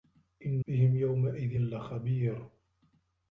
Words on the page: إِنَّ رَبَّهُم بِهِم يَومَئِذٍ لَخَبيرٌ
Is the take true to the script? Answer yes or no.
no